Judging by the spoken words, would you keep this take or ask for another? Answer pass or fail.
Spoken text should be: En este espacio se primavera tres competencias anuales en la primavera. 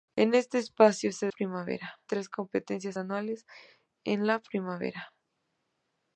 pass